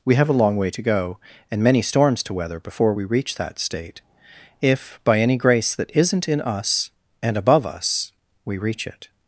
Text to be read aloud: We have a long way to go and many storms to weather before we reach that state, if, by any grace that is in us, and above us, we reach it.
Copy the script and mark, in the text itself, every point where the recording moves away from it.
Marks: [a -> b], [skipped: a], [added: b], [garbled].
We have a long way to go and many storms to weather before we reach that state, if, by any grace that [is -> isn't] in us, and above us, we reach it.